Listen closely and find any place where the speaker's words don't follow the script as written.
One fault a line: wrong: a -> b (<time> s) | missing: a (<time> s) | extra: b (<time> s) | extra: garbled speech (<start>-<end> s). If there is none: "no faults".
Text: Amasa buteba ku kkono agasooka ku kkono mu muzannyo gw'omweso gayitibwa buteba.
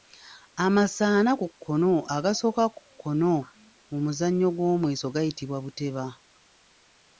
wrong: buteba -> ana (1.2 s)